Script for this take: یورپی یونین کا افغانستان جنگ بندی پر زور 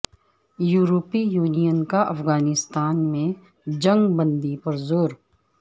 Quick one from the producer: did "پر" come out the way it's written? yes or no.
yes